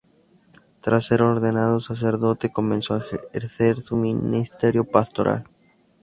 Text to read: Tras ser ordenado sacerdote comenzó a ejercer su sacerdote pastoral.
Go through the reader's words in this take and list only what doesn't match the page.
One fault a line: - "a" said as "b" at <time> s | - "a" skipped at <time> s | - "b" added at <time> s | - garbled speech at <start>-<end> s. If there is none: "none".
- "sacerdote" said as "ministerio" at 4.0 s